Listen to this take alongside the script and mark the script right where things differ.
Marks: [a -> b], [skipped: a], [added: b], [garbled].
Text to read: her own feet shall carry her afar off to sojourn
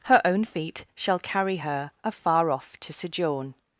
her own feet shall carry her afar off to sojourn